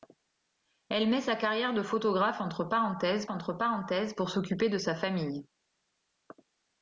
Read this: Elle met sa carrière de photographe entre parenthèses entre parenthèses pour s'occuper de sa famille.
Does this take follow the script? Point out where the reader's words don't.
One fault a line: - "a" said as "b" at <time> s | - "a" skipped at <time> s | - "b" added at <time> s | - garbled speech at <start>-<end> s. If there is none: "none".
none